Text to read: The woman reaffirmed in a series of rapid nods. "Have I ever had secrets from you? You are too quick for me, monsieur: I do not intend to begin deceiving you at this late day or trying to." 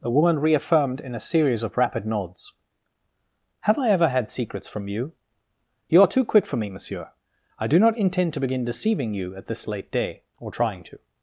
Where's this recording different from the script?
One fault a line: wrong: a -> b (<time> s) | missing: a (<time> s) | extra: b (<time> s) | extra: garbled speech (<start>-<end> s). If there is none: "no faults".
no faults